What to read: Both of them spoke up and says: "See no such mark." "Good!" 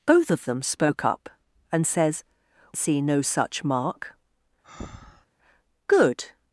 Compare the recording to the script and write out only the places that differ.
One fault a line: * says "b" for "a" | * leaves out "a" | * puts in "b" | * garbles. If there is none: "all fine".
all fine